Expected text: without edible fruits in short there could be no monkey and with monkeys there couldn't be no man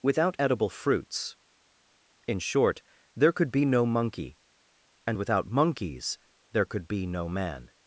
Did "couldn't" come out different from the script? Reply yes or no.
yes